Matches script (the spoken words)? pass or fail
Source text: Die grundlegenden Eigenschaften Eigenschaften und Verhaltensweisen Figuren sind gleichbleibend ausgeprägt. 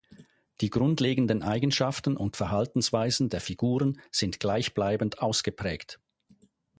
fail